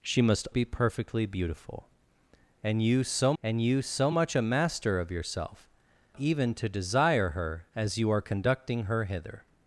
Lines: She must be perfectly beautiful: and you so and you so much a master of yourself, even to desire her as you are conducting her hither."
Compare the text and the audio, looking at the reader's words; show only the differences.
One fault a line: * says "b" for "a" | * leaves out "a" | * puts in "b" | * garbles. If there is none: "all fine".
all fine